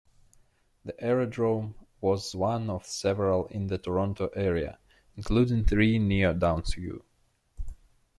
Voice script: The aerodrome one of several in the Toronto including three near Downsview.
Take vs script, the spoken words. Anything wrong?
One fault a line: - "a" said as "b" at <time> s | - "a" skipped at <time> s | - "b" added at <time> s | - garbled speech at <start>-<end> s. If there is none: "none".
- "was" added at 2.0 s
- "area" added at 4.3 s